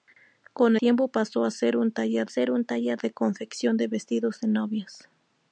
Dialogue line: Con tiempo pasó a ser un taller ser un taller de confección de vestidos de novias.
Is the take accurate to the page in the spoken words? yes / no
yes